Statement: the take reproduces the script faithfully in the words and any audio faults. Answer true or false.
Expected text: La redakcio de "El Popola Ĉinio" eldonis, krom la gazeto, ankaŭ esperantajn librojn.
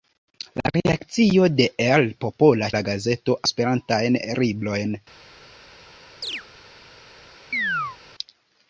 false